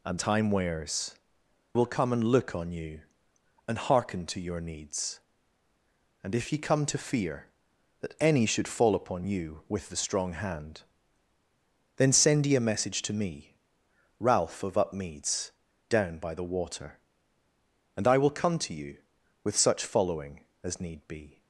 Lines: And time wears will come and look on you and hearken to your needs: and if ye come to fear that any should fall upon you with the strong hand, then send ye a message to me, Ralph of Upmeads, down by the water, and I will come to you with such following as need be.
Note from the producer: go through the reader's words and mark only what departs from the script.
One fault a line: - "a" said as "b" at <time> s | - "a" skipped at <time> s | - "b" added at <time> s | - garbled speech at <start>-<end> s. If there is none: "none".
none